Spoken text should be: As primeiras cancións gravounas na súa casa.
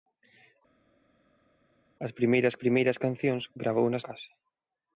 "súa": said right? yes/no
no